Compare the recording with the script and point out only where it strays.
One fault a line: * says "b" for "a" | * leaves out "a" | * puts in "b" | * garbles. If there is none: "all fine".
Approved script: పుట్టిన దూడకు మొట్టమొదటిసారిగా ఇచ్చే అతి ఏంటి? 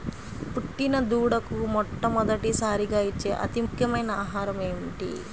* puts in "ముఖ్యమైన ఆహారము"